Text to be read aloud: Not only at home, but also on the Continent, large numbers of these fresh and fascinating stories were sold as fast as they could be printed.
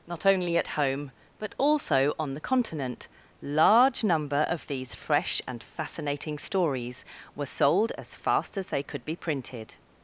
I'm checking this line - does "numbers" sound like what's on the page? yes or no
no